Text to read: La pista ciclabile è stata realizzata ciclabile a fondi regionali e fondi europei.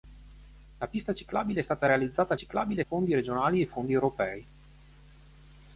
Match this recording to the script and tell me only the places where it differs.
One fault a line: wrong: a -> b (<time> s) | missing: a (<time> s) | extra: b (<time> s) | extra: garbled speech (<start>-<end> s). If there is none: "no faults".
no faults